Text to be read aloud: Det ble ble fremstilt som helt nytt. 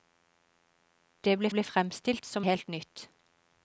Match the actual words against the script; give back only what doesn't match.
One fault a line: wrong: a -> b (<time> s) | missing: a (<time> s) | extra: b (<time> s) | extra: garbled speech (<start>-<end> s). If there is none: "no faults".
no faults